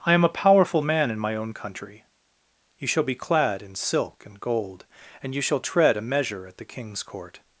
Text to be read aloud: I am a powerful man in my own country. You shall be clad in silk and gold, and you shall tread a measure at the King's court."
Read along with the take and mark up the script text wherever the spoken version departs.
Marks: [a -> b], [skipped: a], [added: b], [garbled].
I am a powerful man in my own country. You shall be clad in silk and gold, and you shall tread a measure at the King's court."